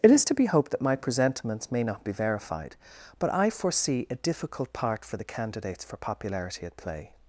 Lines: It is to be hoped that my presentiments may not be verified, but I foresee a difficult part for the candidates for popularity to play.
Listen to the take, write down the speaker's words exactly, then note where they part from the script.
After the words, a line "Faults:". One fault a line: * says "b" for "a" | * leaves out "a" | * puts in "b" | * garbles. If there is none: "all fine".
It is to be hoped that my presentiments may not be verified, but I foresee a difficult part for the candidates for popularity at play.
Faults:
* says "at" for "to"